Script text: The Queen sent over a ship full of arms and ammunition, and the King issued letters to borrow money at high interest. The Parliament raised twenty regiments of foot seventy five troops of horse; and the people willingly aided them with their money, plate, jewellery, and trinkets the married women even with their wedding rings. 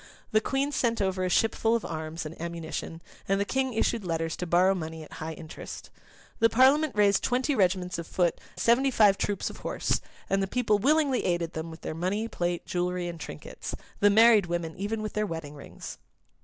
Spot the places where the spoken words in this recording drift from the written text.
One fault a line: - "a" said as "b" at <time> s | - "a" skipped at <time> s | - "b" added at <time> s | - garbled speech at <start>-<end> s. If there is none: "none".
none